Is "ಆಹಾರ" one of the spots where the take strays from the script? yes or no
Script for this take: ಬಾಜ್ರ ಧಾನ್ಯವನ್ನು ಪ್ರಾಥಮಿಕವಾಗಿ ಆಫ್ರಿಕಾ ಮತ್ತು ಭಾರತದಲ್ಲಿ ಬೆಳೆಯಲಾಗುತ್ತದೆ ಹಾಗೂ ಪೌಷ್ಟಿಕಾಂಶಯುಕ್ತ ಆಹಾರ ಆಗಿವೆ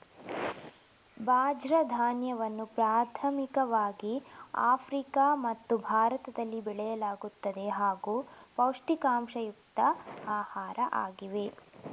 no